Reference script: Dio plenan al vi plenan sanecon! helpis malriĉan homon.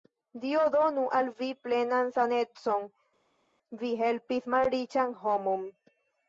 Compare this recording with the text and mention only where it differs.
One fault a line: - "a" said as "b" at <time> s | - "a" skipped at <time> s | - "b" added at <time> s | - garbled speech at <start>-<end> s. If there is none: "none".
- "plenan" said as "donu" at 0.7 s
- "vi" added at 3.8 s